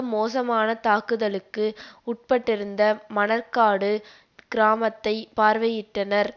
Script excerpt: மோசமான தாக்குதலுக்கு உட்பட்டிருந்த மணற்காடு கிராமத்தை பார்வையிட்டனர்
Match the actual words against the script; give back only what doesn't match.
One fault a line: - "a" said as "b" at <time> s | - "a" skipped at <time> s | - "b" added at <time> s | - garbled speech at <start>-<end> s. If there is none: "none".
none